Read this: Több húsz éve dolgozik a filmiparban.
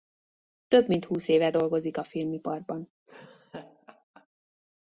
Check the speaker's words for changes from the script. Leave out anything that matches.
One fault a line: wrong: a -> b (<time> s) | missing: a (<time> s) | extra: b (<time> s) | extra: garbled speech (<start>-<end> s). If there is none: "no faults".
extra: mint (0.9 s)